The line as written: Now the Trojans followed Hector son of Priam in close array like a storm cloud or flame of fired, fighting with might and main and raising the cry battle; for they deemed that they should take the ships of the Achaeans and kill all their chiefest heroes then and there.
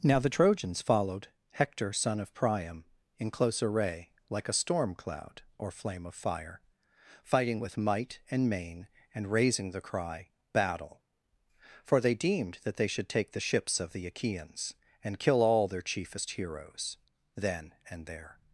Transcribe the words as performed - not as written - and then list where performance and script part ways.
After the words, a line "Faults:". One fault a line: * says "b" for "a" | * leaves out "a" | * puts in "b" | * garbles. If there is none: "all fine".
Now the Trojans followed Hector son of Priam in close array like a storm cloud or flame of fire, fighting with might and main and raising the cry battle; for they deemed that they should take the ships of the Achaeans and kill all their chiefest heroes then and there.
Faults:
* says "fire" for "fired"